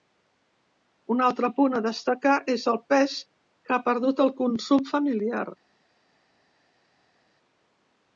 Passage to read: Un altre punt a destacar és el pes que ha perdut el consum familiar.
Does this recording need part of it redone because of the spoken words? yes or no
no